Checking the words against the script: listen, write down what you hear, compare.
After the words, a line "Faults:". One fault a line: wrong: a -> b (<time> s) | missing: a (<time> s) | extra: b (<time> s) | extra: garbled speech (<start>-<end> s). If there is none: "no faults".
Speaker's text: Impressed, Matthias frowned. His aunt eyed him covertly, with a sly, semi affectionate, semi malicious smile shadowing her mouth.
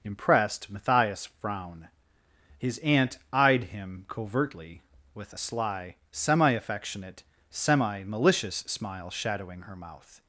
Impressed, Matthias frown. His aunt eyed him covertly, with a sly, semi affectionate, semi malicious smile shadowing her mouth.
Faults:
wrong: frowned -> frown (1.4 s)